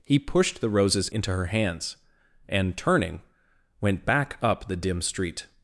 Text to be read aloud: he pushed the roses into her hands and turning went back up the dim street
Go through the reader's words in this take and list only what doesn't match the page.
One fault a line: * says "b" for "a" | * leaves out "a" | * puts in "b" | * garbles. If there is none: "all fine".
all fine